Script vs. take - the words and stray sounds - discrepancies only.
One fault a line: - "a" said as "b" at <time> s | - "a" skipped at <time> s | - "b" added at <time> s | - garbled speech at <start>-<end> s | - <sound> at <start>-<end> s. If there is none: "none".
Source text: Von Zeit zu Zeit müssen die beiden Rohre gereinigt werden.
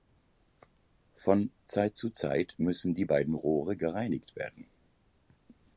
none